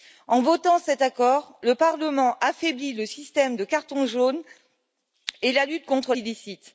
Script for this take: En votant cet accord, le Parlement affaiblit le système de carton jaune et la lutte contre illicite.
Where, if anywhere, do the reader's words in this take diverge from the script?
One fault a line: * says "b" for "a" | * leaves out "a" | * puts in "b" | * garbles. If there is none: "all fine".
all fine